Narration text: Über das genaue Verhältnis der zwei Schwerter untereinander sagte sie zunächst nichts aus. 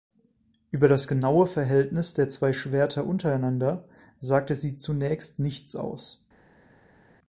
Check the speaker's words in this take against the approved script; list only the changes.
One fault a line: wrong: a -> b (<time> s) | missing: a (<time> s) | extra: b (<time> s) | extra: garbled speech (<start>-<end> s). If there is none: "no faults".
no faults